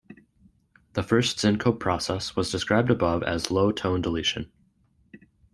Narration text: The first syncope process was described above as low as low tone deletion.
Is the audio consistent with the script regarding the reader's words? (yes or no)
no